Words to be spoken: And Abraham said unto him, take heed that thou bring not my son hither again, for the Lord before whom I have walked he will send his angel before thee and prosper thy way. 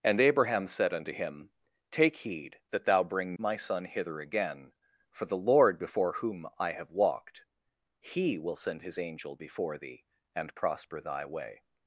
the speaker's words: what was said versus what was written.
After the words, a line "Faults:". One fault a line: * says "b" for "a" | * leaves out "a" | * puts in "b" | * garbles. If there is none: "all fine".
And Abraham said unto him, take heed that thou bring my son hither again, for the Lord before whom I have walked he will send his angel before thee and prosper thy way.
Faults:
* leaves out "not"